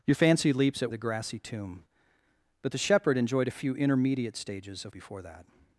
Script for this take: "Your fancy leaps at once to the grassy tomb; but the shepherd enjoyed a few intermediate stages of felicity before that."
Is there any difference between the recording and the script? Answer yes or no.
yes